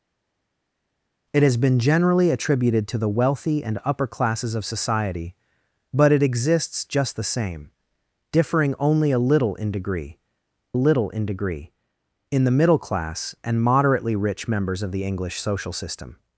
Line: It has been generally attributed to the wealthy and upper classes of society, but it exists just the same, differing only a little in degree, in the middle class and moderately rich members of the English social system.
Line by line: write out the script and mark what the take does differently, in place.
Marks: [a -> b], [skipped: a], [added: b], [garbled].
It has been generally attributed to the wealthy and upper classes of society, but it exists just the same, differing only a little in degree, [added: little in degree] in the middle class and moderately rich members of the English social system.